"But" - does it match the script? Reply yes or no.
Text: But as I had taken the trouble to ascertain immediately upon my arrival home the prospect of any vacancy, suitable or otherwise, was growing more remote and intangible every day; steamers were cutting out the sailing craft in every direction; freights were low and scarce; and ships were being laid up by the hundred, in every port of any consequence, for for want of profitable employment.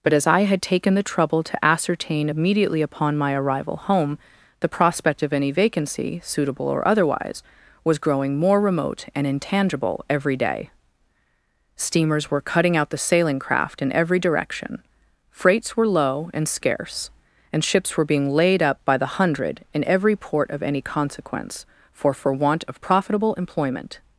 yes